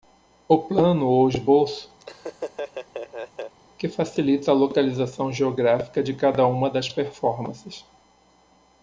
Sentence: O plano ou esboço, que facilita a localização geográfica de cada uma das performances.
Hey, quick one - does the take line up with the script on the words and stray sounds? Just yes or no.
no